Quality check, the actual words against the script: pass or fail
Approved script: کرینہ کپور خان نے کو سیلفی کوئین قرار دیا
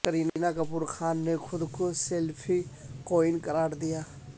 fail